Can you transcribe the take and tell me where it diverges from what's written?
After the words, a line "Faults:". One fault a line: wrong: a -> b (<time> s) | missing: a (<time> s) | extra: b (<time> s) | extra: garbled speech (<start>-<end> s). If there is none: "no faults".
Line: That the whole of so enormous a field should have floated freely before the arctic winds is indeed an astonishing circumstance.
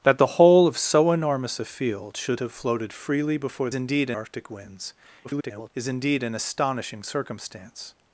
That the whole of so enormous a field should have floated freely before indeed arctic winds [garbled] is indeed an astonishing circumstance.
Faults:
wrong: the -> indeed (3.7 s)
extra: garbled speech (5.2-5.7 s)